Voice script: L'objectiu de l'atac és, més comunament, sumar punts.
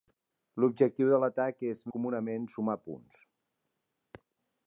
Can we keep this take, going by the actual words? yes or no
no